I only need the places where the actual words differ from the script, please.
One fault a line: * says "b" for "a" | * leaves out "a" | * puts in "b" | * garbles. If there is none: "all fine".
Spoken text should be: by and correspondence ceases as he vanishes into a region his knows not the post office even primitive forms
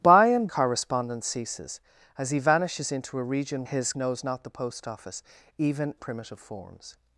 all fine